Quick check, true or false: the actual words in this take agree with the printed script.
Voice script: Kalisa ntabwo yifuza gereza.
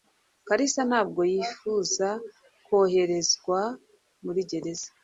false